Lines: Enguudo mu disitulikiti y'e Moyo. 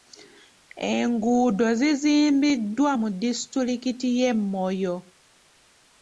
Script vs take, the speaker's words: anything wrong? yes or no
yes